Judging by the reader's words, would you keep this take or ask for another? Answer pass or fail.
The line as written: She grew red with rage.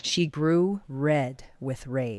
pass